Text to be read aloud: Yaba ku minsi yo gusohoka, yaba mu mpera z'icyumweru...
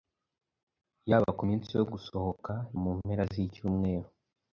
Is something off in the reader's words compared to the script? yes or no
yes